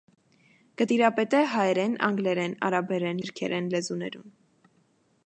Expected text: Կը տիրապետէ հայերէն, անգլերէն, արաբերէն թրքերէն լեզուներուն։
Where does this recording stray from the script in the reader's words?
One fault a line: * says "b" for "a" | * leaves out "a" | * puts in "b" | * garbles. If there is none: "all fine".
all fine